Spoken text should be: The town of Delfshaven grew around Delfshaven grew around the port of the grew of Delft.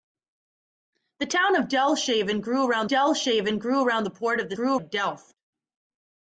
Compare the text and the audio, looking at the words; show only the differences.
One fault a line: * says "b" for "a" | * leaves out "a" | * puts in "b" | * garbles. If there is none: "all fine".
all fine